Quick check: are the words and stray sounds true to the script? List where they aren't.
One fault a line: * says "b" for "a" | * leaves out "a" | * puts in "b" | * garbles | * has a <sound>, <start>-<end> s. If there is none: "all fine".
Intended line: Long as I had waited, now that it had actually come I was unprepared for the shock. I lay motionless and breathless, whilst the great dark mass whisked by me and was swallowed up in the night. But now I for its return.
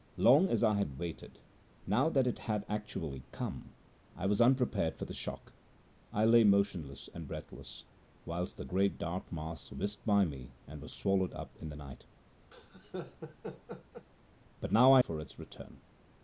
* has a laugh, 12.5-14.1 s